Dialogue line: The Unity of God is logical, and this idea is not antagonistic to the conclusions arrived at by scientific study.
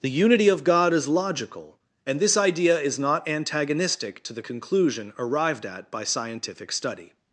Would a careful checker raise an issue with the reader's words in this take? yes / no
yes